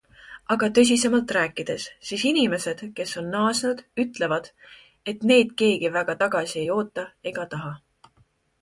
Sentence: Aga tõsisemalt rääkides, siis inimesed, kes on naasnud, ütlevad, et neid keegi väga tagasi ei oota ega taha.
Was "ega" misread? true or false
false